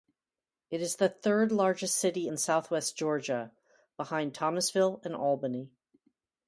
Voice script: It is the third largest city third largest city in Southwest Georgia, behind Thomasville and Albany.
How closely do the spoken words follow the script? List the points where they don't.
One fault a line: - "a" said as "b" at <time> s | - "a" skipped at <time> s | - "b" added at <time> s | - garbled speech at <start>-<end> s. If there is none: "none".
- "third largest city" skipped at 2.3 s